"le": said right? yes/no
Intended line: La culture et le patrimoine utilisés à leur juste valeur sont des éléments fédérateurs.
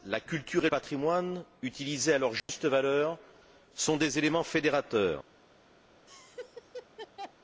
no